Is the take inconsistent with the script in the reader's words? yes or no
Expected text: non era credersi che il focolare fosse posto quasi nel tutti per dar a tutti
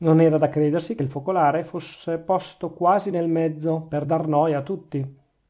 yes